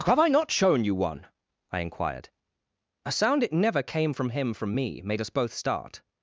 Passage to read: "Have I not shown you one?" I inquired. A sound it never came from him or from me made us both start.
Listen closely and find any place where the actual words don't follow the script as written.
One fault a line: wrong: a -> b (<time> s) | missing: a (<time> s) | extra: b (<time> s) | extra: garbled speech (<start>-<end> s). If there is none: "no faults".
missing: or (4.5 s)